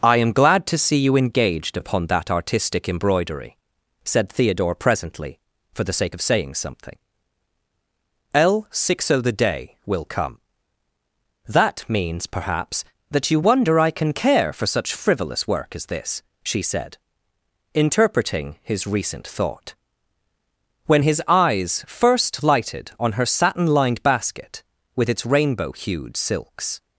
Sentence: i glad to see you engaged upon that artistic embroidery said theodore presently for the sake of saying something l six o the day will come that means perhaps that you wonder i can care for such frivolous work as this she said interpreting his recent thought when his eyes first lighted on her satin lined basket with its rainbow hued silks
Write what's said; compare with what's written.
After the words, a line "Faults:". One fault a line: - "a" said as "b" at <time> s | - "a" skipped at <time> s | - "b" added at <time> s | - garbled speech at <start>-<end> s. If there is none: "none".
i am glad to see you engaged upon that artistic embroidery said theodore presently for the sake of saying something l six o the day will come that means perhaps that you wonder i can care for such frivolous work as this she said interpreting his recent thought when his eyes first lighted on her satin lined basket with its rainbow hued silks
Faults:
- "am" added at 0.2 s